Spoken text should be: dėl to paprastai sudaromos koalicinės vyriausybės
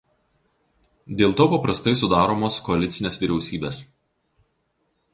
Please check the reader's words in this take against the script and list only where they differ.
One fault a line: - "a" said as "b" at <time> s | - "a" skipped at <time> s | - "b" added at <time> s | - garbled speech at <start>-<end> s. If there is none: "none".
none